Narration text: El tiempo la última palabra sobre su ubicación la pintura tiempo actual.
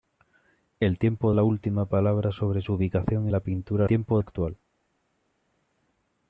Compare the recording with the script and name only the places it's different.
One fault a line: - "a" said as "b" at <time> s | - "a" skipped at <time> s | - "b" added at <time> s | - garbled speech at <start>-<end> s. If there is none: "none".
none